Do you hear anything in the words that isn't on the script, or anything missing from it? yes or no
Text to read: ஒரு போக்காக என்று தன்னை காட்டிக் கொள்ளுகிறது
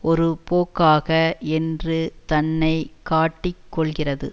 no